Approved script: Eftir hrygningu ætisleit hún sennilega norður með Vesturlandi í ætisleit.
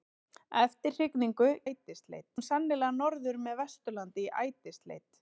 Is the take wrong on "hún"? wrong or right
right